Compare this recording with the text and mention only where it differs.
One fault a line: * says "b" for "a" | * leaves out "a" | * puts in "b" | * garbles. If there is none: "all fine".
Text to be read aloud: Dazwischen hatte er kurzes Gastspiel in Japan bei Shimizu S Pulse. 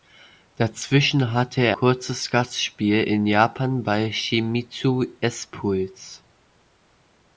all fine